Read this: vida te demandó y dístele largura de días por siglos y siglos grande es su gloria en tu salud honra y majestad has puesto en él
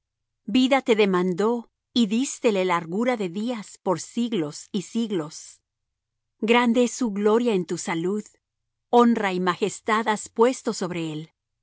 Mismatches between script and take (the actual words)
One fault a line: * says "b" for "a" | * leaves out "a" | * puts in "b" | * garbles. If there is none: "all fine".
* says "sobre" for "en"